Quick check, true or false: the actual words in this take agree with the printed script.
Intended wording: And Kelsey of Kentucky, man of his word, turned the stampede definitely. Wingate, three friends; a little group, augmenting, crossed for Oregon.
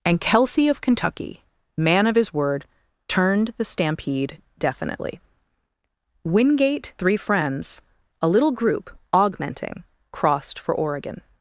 true